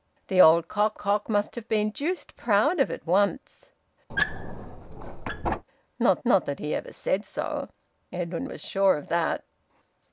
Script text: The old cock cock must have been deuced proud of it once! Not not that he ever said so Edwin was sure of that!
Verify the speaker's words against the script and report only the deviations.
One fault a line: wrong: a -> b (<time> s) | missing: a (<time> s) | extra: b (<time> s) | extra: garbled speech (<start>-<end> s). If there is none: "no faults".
no faults